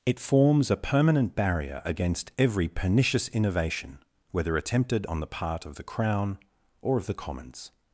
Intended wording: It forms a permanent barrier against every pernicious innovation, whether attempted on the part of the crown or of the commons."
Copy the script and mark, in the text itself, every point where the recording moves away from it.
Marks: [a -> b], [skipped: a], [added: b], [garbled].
It forms a permanent barrier against every pernicious innovation, whether attempted on the part of the crown or of the commons."